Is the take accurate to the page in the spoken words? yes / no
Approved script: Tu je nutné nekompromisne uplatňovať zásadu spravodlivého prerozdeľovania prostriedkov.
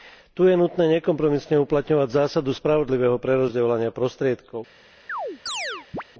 yes